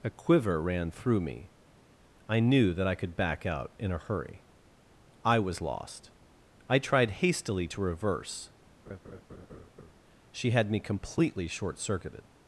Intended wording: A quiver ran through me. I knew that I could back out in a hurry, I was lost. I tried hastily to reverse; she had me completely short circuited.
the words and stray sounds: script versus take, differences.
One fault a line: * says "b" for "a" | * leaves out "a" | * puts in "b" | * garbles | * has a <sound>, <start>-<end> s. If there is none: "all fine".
* has a laugh, 8.9-9.9 s